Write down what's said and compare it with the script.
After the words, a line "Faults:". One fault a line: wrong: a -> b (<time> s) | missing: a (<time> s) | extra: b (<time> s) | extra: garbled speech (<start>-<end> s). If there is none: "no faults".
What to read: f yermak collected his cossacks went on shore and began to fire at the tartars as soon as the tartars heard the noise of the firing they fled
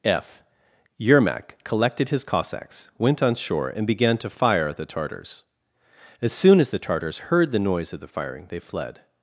f yermak collected his cossacks went on shore and began to fire at the tartars as soon as the tartars heard the noise of the firing they fled
Faults:
no faults